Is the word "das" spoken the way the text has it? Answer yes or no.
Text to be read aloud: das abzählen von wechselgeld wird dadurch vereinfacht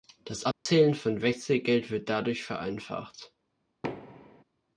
yes